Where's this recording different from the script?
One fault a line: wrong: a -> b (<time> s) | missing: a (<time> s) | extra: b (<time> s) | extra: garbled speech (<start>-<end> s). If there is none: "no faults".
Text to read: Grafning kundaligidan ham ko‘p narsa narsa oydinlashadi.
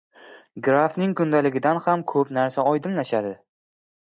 missing: narsa (2.7 s)